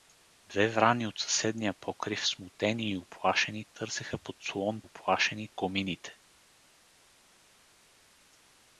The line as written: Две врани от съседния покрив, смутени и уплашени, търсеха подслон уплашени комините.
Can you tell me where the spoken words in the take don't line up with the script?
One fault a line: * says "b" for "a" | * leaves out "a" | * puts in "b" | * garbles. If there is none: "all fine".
all fine